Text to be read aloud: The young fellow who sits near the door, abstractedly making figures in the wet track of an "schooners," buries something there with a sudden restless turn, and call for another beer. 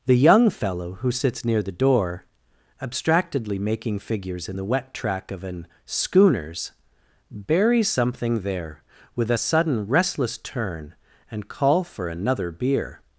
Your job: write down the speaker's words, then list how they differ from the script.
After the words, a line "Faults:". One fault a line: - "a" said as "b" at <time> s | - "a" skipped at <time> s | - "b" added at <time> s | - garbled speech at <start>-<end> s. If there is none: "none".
The young fellow who sits near the door, abstractedly making figures in the wet track of an "schooners," buries something there with a sudden restless turn, and call for another beer.
Faults:
none